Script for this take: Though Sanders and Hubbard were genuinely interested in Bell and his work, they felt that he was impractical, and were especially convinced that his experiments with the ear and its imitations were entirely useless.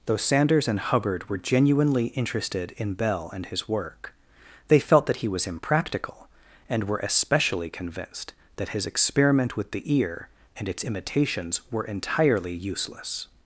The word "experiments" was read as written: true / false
false